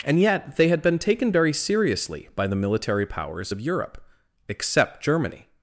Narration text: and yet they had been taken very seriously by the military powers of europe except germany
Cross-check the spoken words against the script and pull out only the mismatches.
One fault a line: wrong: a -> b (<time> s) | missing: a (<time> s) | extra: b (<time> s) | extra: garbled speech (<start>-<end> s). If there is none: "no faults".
no faults